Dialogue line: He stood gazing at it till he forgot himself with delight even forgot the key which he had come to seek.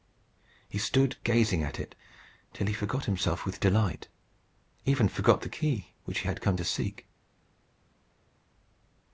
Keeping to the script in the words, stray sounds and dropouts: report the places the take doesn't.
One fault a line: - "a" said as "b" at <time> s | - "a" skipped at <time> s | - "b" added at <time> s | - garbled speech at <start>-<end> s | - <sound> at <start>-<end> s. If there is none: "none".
none